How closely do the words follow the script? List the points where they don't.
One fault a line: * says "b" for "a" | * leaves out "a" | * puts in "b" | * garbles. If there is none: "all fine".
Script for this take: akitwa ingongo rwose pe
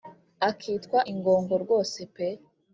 all fine